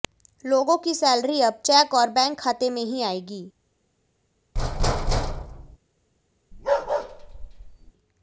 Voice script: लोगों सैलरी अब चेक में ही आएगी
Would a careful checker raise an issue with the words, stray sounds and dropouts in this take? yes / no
yes